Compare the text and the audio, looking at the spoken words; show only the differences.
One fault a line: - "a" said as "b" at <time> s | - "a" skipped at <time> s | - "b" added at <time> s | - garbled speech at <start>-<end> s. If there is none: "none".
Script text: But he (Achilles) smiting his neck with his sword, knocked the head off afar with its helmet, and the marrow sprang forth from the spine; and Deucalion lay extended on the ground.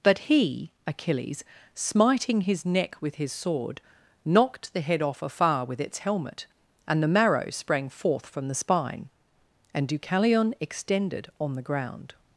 - "lay" skipped at 10.5 s